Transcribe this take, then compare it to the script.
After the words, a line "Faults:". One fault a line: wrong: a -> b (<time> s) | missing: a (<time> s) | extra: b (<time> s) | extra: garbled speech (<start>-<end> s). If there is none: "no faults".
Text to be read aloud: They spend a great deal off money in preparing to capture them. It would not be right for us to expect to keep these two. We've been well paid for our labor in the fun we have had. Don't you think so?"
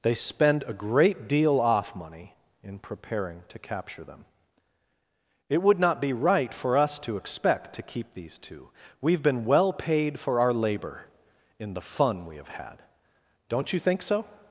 They spend a great deal off money in preparing to capture them. It would not be right for us to expect to keep these two. We've been well paid for our labor in the fun we have had. Don't you think so?"
Faults:
no faults